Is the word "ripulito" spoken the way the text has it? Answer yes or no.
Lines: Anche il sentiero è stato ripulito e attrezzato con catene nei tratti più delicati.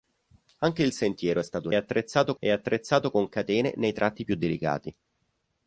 no